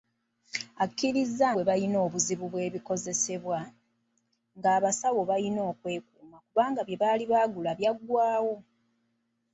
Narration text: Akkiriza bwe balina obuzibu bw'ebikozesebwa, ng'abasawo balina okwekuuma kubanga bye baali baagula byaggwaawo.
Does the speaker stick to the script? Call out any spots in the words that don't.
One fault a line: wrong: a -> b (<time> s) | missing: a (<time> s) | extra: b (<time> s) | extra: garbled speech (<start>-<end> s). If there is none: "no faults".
no faults